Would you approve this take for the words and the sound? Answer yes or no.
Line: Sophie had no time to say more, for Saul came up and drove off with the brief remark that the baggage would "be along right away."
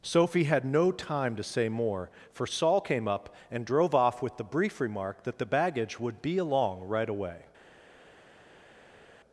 yes